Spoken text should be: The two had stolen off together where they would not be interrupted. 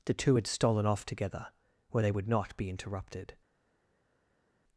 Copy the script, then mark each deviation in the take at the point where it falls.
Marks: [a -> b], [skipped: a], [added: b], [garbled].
The two had stolen off together where they would not be interrupted.